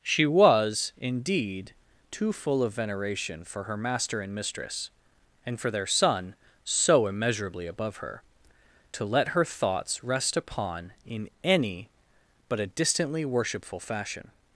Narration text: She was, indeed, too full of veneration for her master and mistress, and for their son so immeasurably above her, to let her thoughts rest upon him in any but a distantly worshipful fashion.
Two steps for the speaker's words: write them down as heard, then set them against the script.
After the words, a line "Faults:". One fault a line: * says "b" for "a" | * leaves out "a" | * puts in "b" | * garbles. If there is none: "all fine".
She was, indeed, too full of veneration for her master and mistress, and for their son so immeasurably above her, to let her thoughts rest upon in any but a distantly worshipful fashion.
Faults:
* leaves out "him"